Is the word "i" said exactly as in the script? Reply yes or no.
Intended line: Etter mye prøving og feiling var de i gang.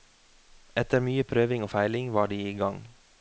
yes